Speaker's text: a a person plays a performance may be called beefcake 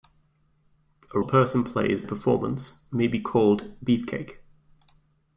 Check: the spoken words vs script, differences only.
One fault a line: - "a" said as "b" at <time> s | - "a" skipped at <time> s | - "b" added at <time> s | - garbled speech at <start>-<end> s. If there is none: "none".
none